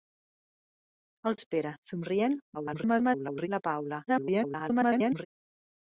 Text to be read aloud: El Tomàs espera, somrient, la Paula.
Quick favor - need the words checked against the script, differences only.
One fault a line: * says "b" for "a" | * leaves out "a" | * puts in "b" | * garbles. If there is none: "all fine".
* leaves out "Tomàs"
* garbles
* garbles